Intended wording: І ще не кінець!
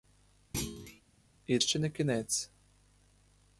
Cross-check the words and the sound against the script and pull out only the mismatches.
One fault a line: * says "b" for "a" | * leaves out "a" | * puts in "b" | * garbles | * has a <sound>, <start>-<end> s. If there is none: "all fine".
* has a thud, 0.5-1.0 s